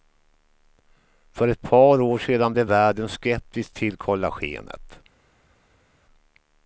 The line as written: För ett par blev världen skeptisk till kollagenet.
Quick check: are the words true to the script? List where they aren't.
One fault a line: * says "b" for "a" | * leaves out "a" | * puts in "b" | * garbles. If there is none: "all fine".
* puts in "år sedan"